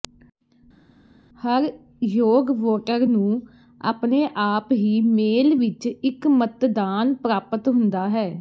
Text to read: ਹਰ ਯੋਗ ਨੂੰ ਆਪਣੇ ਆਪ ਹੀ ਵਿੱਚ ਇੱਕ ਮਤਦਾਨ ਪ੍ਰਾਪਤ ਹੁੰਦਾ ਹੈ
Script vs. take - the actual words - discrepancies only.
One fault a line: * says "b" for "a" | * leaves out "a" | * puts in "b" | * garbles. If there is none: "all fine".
* puts in "ਵੋਟਰ"
* puts in "ਮੇਲ"